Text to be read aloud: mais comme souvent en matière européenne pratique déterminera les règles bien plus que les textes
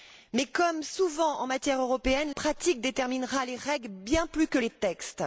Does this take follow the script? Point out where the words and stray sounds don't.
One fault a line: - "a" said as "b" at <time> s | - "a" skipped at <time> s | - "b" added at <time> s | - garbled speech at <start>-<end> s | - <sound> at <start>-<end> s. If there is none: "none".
none